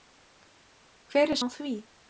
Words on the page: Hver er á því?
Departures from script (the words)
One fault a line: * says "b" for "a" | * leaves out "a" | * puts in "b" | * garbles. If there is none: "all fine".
all fine